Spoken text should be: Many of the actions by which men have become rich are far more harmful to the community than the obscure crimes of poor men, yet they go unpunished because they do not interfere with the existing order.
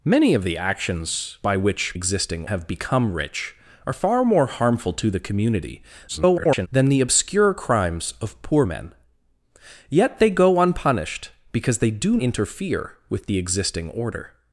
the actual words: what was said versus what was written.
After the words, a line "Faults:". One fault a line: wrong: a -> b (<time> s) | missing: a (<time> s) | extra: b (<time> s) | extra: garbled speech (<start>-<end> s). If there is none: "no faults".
Many of the actions by which existing have become rich are far more harmful to the community [garbled] than the obscure crimes of poor men, yet they go unpunished because they do interfere with the existing order.
Faults:
wrong: men -> existing (1.9 s)
extra: garbled speech (6.1-6.7 s)
missing: not (12.2 s)